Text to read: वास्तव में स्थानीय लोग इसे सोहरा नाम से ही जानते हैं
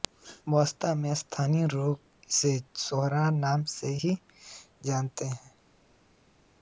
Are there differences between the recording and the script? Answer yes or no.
no